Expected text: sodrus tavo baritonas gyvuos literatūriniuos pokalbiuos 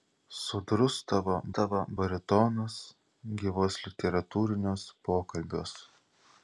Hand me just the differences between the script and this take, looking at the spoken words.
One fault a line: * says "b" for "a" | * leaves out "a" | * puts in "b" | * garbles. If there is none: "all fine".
* puts in "tavo"